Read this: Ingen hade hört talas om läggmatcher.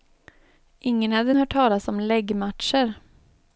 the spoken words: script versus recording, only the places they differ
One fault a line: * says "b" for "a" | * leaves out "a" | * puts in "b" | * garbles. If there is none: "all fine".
all fine